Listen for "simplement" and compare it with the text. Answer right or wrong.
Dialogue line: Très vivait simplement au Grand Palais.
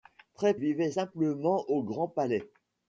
right